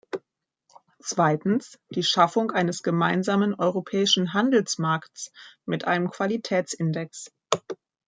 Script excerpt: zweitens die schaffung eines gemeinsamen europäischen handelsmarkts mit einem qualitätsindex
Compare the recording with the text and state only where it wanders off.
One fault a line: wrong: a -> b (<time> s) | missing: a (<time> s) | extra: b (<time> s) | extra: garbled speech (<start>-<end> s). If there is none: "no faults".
no faults